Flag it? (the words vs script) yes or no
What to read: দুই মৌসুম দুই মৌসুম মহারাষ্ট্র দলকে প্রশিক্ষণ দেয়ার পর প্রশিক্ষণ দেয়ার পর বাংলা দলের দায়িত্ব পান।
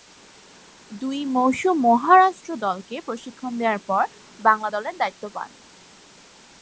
yes